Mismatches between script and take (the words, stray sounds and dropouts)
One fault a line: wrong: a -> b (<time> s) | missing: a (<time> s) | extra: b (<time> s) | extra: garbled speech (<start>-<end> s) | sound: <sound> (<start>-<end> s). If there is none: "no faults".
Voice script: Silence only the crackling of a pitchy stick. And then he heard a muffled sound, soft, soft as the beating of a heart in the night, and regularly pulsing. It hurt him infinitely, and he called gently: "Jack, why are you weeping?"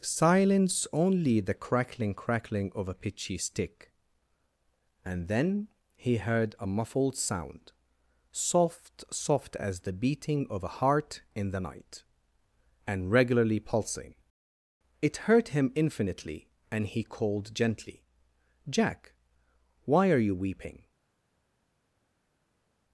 extra: crackling (2.1 s)